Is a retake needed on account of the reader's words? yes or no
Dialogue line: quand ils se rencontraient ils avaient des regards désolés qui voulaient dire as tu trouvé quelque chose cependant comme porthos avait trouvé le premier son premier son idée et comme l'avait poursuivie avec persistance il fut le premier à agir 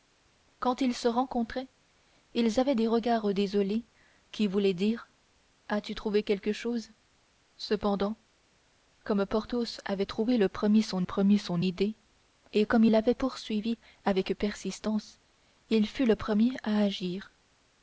no